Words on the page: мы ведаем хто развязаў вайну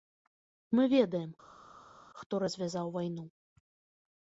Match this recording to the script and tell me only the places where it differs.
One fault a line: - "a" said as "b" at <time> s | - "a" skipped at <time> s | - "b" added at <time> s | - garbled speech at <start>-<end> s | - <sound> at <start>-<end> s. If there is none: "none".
none